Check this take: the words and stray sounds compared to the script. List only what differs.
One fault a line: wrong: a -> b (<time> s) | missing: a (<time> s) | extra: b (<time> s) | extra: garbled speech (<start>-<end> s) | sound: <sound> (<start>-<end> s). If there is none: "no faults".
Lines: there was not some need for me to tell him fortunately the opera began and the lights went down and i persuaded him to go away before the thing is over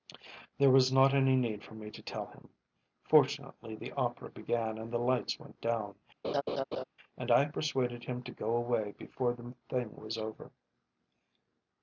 wrong: some -> any (1.1 s)
sound: laugh (6.2-6.8 s)
wrong: is -> was (9.9 s)